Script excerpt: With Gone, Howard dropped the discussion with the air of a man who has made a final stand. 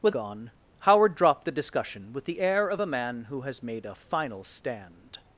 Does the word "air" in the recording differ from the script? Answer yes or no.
no